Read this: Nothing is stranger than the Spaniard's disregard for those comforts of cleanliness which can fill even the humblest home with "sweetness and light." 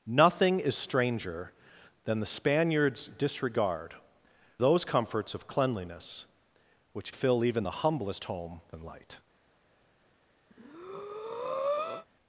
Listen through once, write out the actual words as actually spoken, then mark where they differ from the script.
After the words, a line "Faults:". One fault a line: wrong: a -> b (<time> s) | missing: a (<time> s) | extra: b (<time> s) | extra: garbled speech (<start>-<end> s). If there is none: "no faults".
Nothing is stranger than the Spaniard's disregard those comforts of cleanliness which fill even the humblest home and light."
Faults:
missing: for (3.9 s)
missing: can (7.1 s)
missing: with sweetness (8.6 s)